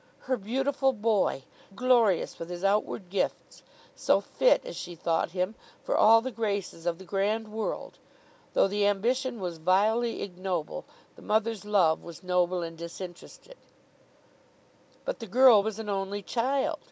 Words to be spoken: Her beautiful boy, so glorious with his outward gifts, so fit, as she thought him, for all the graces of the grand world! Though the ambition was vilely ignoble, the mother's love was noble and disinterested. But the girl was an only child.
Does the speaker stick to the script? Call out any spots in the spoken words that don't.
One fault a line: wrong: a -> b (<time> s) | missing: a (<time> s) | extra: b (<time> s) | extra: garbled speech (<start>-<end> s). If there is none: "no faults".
missing: so (1.4 s)